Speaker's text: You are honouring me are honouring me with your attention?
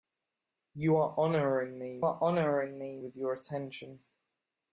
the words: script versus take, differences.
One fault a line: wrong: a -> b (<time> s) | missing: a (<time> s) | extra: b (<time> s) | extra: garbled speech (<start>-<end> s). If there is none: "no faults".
no faults